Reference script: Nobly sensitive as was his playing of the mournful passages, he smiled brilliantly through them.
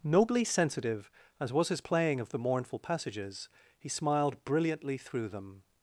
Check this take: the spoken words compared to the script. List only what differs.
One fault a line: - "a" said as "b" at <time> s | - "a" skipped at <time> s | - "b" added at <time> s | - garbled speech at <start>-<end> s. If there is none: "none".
none